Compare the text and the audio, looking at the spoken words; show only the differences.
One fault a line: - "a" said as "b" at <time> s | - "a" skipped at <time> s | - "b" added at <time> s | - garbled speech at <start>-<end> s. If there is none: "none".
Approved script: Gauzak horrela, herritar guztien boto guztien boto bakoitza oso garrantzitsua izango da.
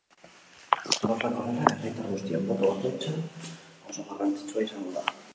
- "guztien boto" skipped at 2.7 s